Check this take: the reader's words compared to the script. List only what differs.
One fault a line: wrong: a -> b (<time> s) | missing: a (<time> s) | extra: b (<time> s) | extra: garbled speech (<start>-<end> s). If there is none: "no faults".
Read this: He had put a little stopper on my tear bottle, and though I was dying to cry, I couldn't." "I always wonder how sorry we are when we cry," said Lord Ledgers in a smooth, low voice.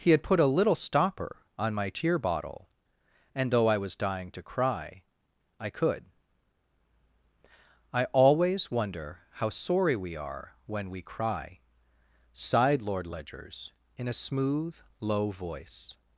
wrong: couldn't -> could (5.7 s)
wrong: said -> sighed (12.3 s)